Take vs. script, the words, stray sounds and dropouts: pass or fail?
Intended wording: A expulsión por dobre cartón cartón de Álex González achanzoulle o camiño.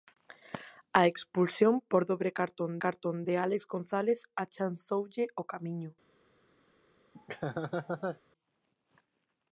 fail